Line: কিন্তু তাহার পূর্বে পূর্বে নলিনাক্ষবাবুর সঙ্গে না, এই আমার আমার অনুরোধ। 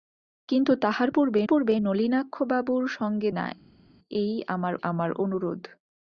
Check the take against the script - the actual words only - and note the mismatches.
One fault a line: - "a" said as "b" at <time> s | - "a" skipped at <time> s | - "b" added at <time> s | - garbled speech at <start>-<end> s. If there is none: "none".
none